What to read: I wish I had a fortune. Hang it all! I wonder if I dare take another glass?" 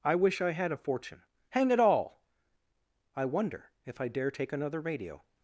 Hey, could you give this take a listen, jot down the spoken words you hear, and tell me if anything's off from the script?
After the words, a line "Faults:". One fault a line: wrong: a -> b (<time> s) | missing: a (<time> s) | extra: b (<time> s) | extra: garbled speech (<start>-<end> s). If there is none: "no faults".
I wish I had a fortune. Hang it all! I wonder if I dare take another radio?"
Faults:
wrong: glass -> radio (4.8 s)